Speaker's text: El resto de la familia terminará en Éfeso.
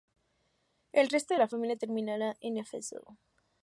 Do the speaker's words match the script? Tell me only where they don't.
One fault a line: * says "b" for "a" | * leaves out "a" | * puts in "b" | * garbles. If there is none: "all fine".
all fine